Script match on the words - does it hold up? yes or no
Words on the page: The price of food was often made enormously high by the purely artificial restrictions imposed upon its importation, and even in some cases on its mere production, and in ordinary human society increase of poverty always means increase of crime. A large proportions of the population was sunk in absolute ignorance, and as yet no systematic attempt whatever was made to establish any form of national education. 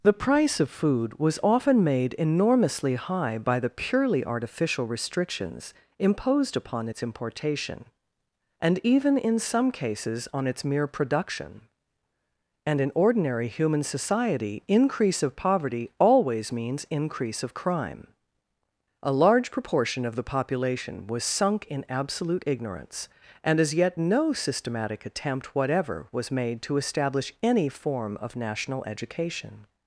no